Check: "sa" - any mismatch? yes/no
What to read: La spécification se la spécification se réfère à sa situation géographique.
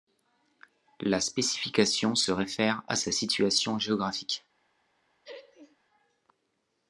no